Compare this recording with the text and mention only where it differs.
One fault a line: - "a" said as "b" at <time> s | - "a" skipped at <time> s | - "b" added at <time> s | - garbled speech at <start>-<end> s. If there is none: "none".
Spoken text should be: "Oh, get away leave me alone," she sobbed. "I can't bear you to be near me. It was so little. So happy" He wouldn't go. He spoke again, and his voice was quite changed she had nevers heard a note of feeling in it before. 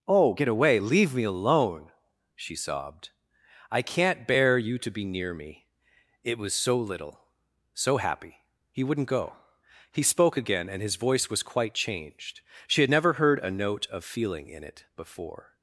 - "nevers" said as "never" at 12.9 s